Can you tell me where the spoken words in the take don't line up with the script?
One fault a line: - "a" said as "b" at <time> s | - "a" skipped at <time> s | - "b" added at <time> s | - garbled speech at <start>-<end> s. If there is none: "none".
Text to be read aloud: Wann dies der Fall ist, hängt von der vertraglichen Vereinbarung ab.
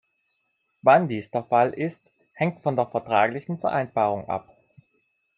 none